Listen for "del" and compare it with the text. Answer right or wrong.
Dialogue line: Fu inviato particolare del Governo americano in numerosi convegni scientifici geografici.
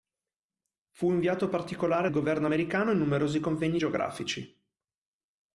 wrong